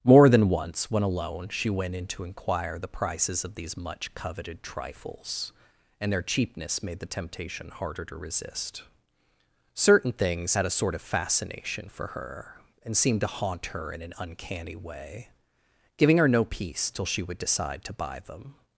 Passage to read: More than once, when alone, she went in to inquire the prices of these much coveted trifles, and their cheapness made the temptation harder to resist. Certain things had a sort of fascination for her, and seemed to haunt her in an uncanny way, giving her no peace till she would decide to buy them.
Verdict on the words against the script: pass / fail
pass